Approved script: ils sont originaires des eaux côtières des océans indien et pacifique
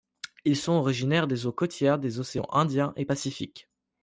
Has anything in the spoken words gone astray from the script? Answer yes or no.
no